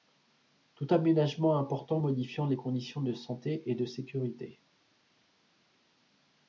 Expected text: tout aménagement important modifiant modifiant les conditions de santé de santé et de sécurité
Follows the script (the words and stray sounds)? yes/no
no